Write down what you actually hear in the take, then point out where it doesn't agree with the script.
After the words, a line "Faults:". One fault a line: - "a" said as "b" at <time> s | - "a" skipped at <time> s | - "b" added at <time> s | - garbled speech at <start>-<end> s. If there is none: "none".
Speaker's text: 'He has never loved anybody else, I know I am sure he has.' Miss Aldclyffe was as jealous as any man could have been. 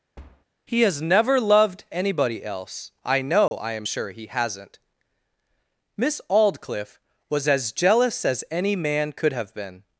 'He has never loved anybody else, I know I am sure he hasn't.' Miss Aldclyffe was as jealous as any man could have been.
Faults:
- "has" said as "hasn't" at 4.3 s